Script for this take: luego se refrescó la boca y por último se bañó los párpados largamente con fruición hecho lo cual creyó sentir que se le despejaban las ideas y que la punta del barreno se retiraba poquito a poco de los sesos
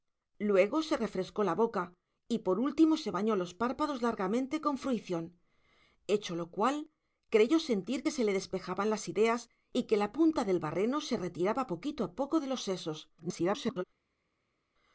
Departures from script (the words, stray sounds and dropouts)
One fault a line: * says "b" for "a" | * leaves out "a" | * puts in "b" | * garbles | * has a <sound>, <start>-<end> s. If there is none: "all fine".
* garbles